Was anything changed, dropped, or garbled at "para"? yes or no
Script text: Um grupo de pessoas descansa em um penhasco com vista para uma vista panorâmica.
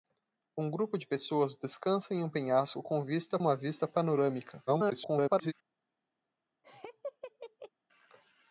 yes